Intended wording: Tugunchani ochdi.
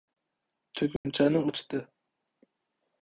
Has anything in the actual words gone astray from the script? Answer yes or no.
no